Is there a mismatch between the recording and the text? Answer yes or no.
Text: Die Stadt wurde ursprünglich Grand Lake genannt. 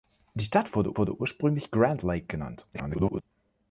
yes